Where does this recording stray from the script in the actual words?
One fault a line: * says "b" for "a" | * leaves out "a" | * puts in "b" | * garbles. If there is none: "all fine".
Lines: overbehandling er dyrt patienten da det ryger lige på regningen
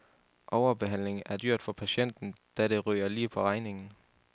* puts in "for"